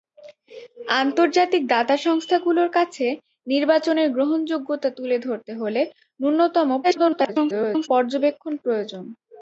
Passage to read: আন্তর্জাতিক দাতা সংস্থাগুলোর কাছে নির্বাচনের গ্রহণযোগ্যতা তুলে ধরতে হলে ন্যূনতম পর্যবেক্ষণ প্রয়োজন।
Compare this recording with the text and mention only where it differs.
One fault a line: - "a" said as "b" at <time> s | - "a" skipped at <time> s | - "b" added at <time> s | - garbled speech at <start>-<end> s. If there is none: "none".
- garbled speech at 6.8-7.9 s